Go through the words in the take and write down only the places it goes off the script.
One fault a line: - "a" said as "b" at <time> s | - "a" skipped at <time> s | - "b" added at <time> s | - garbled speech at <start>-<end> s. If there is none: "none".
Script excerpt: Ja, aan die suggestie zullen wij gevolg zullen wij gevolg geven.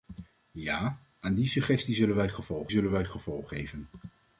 none